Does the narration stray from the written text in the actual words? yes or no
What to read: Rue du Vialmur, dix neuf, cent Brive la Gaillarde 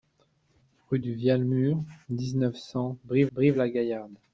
yes